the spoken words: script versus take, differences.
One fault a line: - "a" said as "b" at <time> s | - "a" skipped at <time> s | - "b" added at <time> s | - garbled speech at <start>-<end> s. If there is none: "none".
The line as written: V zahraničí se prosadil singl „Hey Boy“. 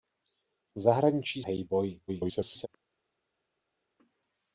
- "se prosadil singl" skipped at 1.4 s
- garbled speech at 2.1-2.7 s